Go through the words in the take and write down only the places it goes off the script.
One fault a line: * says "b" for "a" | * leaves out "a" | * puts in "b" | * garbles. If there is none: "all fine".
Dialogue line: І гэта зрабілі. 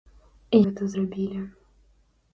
all fine